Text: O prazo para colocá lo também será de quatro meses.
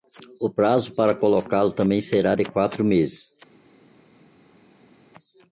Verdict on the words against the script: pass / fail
pass